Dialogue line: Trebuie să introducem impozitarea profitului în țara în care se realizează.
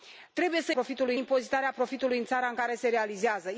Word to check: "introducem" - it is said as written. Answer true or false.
false